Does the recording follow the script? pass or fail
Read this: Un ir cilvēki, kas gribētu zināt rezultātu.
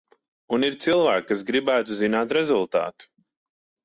pass